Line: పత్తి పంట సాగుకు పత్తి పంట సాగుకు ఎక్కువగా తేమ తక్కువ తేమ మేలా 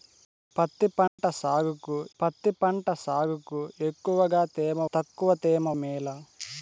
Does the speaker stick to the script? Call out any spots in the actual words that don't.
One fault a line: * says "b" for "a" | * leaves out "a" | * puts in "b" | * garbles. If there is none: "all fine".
all fine